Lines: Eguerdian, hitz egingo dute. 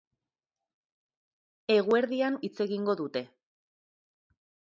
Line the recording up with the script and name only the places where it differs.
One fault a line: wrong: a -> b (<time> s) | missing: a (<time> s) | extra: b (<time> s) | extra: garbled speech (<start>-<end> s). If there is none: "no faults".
no faults